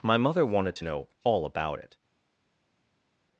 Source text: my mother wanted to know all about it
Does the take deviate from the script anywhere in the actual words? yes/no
no